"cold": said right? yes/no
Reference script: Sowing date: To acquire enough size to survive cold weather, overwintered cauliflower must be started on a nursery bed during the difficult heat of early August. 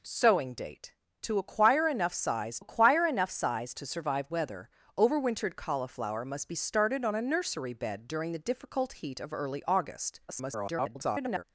no